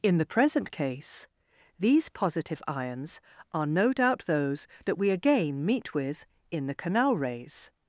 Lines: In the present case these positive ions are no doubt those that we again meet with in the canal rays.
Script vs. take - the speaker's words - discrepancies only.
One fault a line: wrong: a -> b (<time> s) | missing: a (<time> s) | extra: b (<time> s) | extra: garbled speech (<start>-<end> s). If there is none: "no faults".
no faults